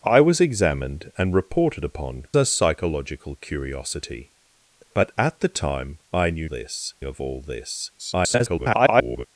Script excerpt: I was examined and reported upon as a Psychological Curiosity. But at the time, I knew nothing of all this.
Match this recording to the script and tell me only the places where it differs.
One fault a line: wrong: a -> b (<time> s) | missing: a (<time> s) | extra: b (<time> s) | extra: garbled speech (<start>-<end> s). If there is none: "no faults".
missing: as (2.2 s)
wrong: nothing -> this (6.4 s)
extra: garbled speech (8.0-9.3 s)